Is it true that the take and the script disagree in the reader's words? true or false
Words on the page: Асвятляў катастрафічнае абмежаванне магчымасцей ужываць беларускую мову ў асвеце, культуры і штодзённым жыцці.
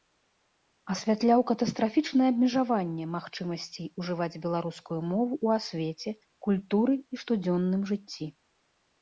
false